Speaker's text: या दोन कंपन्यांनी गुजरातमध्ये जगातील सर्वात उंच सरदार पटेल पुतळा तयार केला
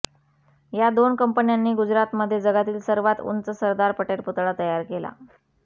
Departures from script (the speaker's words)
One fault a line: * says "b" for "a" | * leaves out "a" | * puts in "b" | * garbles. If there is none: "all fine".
all fine